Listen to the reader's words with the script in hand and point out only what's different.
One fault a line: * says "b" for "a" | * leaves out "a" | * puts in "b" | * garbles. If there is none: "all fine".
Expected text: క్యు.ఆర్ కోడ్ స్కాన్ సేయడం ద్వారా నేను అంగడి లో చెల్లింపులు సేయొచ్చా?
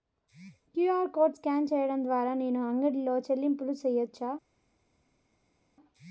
all fine